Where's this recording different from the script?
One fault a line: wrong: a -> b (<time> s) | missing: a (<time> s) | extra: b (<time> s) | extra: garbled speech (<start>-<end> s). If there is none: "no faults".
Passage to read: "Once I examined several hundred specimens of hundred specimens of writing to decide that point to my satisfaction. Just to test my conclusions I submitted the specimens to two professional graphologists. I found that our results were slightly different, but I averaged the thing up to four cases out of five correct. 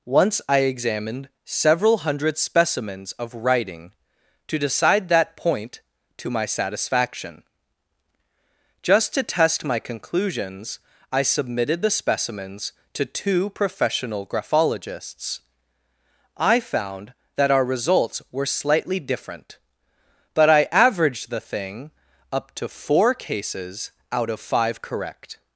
missing: hundred specimens of (3.3 s)